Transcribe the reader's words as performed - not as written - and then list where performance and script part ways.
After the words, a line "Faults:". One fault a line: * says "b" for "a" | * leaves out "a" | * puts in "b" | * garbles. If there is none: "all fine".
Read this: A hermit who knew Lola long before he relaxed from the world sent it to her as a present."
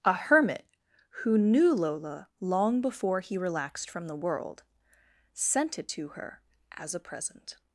A hermit who knew Lola long before he relaxed from the world sent it to her as a present."
Faults:
all fine